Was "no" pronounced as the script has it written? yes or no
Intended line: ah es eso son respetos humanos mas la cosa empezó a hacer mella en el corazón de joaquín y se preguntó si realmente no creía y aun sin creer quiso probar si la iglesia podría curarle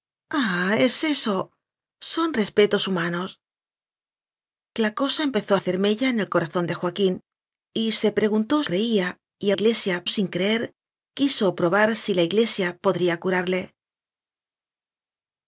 no